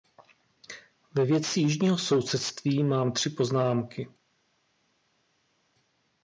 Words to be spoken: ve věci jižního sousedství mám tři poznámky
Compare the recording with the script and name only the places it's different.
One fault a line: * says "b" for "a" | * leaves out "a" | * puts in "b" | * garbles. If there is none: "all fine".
all fine